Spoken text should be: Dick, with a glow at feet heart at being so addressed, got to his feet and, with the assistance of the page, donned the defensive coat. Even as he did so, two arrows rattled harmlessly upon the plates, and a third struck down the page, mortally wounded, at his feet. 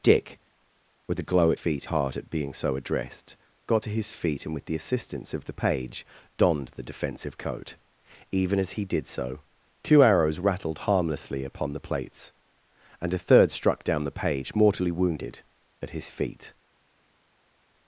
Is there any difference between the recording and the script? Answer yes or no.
no